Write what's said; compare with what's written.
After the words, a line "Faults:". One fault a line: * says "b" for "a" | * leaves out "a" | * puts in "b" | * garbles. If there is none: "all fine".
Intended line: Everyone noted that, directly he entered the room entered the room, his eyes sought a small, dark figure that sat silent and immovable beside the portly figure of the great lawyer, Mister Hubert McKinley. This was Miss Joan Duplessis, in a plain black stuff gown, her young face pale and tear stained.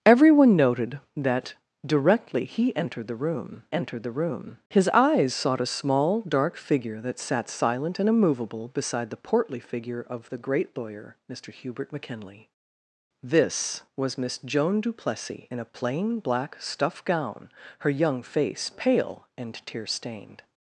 Everyone noted that, directly he entered the room entered the room, his eyes sought a small, dark figure that sat silent and immovable beside the portly figure of the great lawyer, Mister Hubert McKinley. This was Miss Joan Duplessis, in a plain black stuff gown, her young face pale and tear stained.
Faults:
all fine